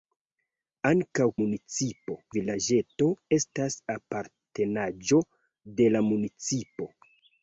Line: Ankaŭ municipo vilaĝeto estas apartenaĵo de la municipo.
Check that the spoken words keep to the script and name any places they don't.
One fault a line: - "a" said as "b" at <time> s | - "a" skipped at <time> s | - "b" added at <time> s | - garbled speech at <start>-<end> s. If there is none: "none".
none